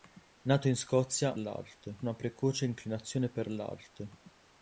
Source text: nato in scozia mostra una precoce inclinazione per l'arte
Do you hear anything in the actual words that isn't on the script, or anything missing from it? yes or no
yes